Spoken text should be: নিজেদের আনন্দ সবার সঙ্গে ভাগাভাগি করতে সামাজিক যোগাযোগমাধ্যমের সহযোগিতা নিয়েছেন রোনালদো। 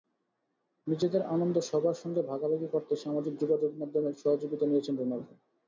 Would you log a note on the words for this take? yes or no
no